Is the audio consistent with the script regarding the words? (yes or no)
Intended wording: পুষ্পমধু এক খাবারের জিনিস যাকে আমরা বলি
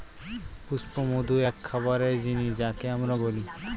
yes